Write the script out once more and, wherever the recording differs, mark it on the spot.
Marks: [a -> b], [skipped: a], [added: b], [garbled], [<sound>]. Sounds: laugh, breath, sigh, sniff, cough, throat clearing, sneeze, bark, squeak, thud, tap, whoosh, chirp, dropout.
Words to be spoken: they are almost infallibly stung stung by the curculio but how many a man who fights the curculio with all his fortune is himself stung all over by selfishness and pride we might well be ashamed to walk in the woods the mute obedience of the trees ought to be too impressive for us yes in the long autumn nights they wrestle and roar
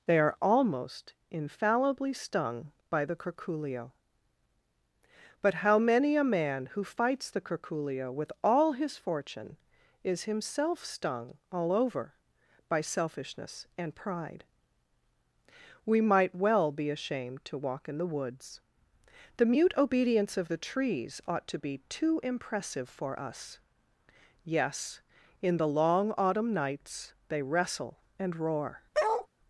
they are almost infallibly stung [skipped: stung] by the curculio but how many a man who fights the curculio with all his fortune is himself stung all over by selfishness and pride we might well be ashamed to walk in the woods the mute obedience of the trees ought to be too impressive for us yes in the long autumn nights they wrestle and roar [bark]